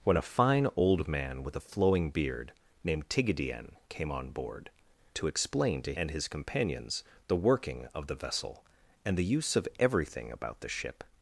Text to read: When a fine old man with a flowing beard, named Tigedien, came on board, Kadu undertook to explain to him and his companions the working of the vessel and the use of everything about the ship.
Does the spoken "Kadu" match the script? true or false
false